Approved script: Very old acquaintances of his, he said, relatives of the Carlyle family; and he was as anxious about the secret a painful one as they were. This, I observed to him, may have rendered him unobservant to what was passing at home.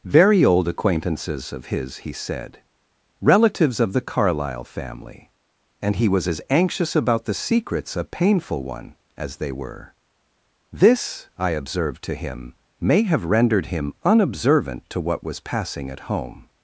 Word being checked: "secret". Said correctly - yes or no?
no